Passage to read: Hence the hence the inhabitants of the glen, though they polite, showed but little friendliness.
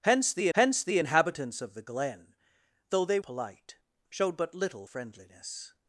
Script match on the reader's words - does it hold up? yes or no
yes